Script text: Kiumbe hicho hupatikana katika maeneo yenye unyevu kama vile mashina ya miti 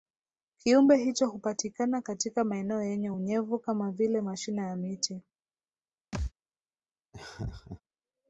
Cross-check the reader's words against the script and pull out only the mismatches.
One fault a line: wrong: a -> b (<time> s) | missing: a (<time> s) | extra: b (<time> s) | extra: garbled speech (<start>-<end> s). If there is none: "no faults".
no faults